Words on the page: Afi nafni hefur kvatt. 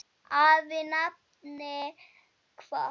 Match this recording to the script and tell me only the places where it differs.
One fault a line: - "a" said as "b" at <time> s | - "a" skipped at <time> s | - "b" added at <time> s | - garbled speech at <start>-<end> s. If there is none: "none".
- "hefur" skipped at 1.8 s